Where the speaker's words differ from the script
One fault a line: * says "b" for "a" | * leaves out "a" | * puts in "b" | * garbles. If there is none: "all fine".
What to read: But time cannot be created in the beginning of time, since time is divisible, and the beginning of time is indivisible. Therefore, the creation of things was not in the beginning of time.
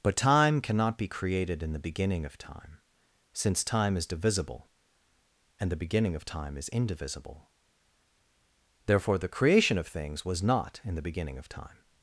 all fine